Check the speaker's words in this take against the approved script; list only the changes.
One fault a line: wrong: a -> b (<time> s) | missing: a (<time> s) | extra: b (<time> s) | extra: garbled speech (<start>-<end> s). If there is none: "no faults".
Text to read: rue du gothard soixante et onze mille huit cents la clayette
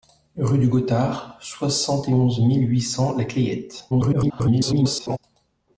extra: garbled speech (3.9-5.2 s)